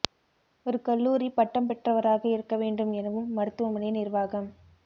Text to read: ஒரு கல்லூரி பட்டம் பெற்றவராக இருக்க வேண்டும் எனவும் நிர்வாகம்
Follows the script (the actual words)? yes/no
no